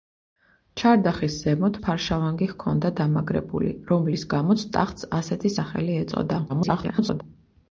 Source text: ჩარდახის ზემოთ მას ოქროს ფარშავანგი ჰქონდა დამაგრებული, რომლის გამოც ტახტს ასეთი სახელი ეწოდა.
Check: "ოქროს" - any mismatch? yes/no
yes